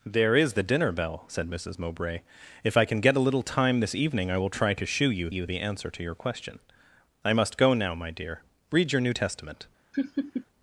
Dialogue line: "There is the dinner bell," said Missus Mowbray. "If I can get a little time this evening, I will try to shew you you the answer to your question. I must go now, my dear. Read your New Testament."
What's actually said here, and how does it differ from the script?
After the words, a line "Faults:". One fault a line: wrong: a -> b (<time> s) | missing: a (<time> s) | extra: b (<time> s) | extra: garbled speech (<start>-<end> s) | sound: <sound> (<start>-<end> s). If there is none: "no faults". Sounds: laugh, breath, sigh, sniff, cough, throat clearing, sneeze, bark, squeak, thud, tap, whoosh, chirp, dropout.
"There is the dinner bell," said Missus Mowbray. "If I can get a little time this evening, I will try to shew you you the answer to your question. I must go now, my dear. Read your New Testament."
Faults:
sound: laugh (9.9-10.5 s)